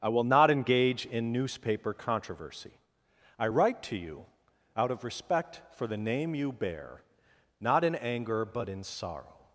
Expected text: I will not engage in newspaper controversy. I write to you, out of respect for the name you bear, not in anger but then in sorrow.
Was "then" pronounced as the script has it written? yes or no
no